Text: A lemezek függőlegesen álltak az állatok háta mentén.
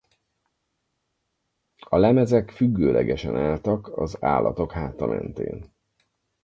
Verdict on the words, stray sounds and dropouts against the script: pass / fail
pass